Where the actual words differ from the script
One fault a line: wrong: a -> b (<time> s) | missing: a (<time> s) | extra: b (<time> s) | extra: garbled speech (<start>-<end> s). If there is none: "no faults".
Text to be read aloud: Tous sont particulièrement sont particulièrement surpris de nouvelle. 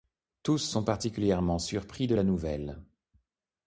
missing: sont particulièrement (1.6 s)
extra: la (2.1 s)